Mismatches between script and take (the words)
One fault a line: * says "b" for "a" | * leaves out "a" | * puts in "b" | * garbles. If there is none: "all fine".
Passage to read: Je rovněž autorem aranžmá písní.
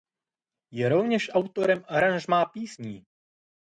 all fine